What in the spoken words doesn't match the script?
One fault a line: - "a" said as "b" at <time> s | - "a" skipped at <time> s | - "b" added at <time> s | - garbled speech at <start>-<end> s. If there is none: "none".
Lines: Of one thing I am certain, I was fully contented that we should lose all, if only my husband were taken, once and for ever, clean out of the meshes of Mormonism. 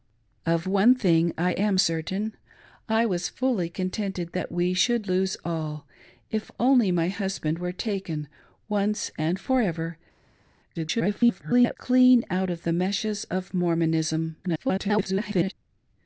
- garbled speech at 10.7-11.8 s
- garbled speech at 14.4-15.5 s